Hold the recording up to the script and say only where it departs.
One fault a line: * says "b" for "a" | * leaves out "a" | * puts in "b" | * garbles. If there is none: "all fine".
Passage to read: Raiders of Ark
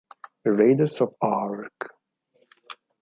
all fine